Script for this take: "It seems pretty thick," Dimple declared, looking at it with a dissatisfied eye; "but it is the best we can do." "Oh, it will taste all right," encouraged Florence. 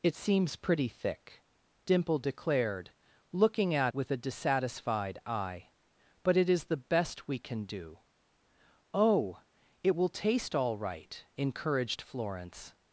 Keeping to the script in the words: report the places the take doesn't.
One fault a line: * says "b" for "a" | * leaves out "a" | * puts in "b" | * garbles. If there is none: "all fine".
* leaves out "it"